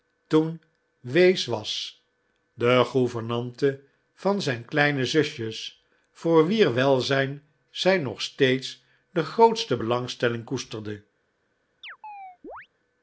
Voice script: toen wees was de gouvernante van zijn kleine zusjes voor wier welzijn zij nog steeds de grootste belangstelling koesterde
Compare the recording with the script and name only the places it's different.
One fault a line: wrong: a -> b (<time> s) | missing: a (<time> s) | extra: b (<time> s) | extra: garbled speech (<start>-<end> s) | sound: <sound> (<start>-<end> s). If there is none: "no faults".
sound: chirp (11.8-12.7 s)